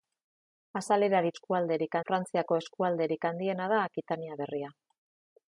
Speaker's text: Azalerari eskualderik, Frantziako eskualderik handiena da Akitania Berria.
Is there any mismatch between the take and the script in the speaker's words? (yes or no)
no